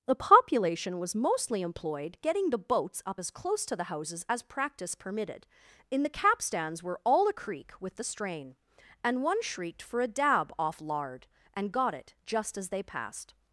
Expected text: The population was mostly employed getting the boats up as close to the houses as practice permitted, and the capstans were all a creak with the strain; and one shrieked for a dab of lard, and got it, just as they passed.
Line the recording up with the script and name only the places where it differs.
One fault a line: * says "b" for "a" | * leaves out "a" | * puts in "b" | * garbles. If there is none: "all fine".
* says "in" for "and"
* says "off" for "of"